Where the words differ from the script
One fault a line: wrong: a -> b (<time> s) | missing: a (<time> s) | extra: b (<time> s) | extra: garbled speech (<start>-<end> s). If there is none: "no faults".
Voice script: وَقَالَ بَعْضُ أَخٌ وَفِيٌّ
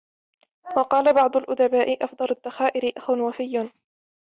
extra: الْأُدَبَاءِ أَفْضَلُ الذَّخَائِرِ (1.4 s)